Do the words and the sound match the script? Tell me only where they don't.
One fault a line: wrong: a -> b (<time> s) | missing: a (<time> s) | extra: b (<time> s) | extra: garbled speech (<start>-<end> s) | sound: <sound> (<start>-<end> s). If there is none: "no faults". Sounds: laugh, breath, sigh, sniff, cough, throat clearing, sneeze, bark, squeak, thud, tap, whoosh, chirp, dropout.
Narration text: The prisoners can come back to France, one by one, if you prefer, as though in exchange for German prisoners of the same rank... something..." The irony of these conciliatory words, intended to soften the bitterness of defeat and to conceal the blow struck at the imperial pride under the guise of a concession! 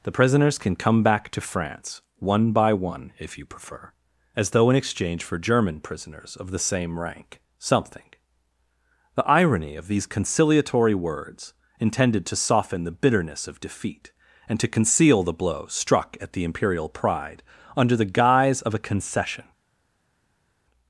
no faults